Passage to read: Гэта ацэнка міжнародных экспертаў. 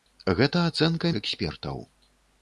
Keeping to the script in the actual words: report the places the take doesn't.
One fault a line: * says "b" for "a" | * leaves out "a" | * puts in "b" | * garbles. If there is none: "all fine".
* leaves out "міжнародных"